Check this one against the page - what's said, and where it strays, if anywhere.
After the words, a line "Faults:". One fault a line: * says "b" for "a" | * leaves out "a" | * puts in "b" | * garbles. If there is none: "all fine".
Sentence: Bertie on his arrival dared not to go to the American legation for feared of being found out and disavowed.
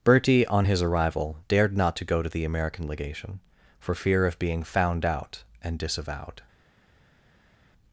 Bertie on his arrival dared not to go to the American legation for fear of being found out and disavowed.
Faults:
* says "fear" for "feared"